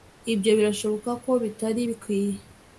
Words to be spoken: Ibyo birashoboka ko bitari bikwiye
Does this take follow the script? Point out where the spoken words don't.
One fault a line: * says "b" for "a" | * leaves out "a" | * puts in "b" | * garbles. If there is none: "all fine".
all fine